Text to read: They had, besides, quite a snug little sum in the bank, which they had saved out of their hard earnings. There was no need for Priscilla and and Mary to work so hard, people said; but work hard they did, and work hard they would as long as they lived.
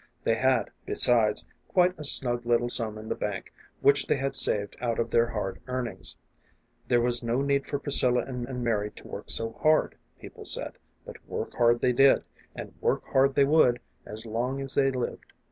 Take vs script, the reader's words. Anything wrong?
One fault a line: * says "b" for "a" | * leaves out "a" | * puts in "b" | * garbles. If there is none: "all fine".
all fine